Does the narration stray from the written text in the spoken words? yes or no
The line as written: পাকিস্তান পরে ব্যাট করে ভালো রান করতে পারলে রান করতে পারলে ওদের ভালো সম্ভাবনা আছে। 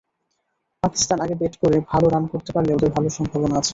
yes